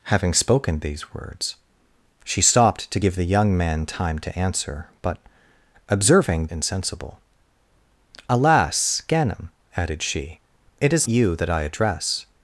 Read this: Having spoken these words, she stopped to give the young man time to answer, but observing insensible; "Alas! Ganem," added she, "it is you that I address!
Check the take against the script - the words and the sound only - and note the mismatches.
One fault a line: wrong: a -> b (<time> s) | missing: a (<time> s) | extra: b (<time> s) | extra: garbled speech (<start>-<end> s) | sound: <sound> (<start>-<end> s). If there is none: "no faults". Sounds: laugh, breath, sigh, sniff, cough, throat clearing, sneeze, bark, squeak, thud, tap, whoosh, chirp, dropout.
no faults